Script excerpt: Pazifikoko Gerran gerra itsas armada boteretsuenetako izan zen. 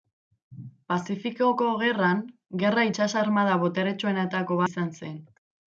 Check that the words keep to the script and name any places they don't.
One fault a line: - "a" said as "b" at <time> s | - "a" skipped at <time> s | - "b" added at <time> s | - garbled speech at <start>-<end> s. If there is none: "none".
none